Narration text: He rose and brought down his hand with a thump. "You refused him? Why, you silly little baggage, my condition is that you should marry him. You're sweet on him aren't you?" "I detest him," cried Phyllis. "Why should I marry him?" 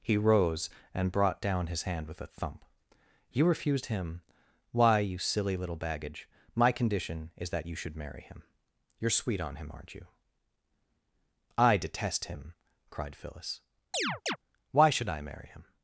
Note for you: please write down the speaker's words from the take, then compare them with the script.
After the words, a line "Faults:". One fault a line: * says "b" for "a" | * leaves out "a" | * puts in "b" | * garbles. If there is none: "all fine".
He rose and brought down his hand with a thump. "You refused him? Why, you silly little baggage, my condition is that you should marry him. You're sweet on him aren't you?" "I detest him," cried Phyllis. "Why should I marry him?"
Faults:
all fine